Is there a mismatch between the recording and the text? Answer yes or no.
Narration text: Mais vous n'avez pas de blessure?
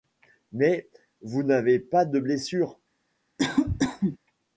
no